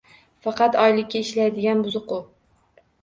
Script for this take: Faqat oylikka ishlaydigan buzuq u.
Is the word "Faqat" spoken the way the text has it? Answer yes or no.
yes